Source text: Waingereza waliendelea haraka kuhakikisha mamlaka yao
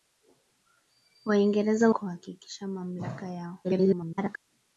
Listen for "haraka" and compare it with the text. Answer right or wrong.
wrong